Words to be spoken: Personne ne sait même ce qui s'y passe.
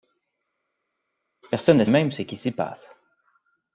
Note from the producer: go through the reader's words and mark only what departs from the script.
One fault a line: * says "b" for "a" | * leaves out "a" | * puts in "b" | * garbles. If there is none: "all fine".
* leaves out "sait"